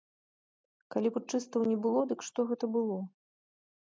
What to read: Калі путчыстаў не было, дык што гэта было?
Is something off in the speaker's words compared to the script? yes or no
no